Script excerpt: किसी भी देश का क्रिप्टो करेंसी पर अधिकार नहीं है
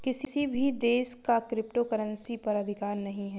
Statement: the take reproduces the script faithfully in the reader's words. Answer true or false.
true